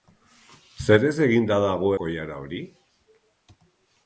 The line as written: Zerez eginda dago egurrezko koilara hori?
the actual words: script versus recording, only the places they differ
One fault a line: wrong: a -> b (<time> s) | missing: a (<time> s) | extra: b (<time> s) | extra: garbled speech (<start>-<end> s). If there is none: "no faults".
missing: egurrezko (1.9 s)